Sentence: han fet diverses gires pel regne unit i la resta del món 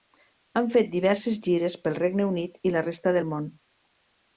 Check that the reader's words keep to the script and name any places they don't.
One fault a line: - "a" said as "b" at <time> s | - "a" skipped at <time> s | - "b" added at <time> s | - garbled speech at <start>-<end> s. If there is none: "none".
none